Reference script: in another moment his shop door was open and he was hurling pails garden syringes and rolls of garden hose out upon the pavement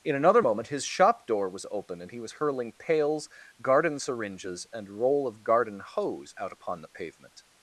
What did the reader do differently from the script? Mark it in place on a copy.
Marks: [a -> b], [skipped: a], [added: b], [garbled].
in another moment his shop door was open and he was hurling pails garden syringes and [rolls -> roll] of garden hose out upon the pavement